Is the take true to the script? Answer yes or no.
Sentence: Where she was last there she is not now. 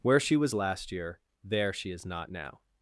no